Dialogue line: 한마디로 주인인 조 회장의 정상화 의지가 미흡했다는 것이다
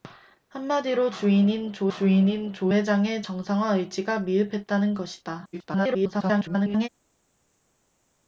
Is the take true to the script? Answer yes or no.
no